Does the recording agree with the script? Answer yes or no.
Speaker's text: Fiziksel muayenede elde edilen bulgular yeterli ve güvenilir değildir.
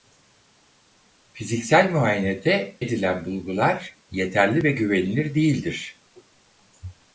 no